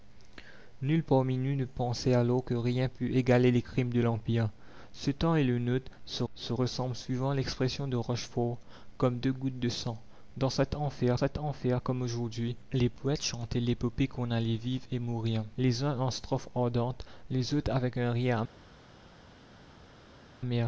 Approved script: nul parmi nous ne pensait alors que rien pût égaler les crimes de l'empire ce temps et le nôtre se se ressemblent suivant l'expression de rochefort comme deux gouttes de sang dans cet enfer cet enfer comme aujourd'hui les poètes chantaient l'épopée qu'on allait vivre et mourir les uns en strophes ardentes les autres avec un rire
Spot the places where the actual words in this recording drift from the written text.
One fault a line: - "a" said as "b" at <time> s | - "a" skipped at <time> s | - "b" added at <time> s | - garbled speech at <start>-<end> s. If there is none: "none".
none